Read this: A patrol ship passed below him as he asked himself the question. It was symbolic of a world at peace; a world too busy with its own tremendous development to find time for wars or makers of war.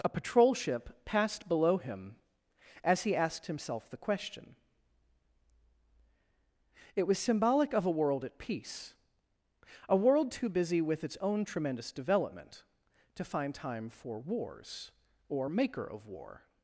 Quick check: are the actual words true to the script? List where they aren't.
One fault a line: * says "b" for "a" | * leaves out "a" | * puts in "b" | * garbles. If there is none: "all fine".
* says "maker" for "makers"